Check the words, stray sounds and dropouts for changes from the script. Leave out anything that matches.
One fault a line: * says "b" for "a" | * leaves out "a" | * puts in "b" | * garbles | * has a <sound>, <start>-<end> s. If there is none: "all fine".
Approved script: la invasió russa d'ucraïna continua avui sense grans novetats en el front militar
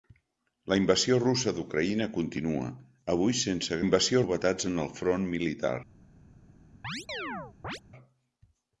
* says "invasió" for "grans"
* has a chirp, 6.8-7.8 s